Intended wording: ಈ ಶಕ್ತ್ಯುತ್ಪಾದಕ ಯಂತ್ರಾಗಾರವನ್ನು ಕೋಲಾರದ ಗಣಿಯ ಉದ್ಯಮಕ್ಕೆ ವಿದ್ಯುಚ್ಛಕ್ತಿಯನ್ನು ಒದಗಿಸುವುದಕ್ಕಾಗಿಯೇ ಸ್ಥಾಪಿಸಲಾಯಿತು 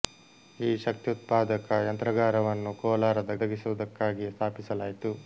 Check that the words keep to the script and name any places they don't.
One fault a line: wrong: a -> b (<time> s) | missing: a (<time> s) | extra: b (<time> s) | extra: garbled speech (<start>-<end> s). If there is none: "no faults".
missing: ಗಣಿಯ ಉದ್ಯಮಕ್ಕೆ ವಿದ್ಯುಚ್ಛಕ್ತಿಯನ್ನು (3.3 s)